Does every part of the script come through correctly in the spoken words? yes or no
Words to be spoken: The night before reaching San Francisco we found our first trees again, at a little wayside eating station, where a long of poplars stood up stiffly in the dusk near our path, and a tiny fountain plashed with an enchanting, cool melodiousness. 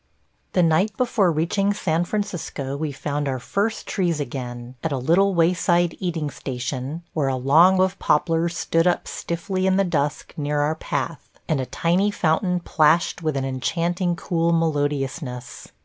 yes